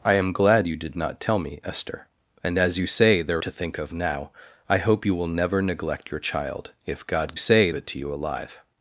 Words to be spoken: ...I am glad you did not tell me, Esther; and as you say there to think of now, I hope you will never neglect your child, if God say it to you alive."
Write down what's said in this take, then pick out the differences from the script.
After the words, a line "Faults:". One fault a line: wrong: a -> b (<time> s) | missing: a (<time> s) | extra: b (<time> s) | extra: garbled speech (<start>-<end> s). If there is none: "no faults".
...I am glad you did not tell me, Esther; and as you say there to think of now, I hope you will never neglect your child, if God say it to you alive."
Faults:
no faults